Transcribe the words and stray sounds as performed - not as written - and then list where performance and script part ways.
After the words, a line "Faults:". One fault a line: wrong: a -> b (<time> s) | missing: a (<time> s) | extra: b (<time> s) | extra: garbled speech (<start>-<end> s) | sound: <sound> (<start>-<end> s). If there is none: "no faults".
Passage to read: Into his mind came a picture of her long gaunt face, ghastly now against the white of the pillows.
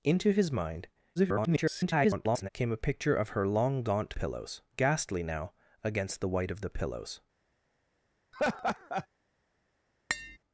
Into his mind [garbled] came a picture of her long gaunt pillows, ghastly now against the white of the pillows.
Faults:
extra: garbled speech (1.2-2.5 s)
wrong: face -> pillows (4.1 s)
sound: laugh (8.3-9.1 s)
sound: tap (10.1-10.4 s)